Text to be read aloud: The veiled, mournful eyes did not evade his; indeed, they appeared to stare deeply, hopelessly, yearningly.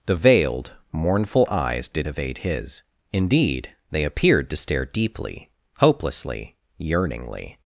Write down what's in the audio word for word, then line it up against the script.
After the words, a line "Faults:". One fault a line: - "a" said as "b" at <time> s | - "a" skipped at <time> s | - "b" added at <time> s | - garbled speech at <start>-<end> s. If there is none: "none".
The veiled, mournful eyes did evade his; indeed, they appeared to stare deeply, hopelessly, yearningly.
Faults:
- "not" skipped at 2.1 s